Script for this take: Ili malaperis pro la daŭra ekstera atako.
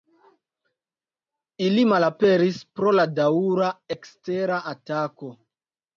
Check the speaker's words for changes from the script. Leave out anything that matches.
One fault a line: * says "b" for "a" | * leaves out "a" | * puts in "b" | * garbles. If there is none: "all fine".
all fine